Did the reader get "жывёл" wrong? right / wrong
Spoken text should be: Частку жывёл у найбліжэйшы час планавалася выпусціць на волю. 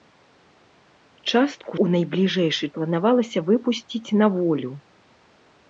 wrong